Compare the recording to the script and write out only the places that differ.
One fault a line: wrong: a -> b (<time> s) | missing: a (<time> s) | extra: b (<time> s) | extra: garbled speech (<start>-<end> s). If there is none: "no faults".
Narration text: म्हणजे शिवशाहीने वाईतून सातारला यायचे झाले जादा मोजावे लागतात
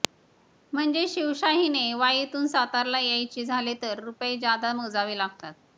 extra: तर रुपये (3.8 s)